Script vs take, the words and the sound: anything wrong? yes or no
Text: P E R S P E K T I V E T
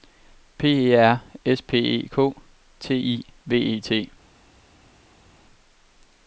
no